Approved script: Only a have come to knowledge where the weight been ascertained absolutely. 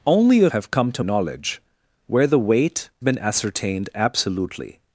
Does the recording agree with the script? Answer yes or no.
yes